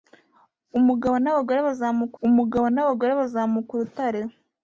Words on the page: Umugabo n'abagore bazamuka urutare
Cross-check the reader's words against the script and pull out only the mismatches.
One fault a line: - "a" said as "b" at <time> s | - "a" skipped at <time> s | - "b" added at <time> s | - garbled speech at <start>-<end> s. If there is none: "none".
- "umugabo n'abagore bazamuka" added at 2.3 s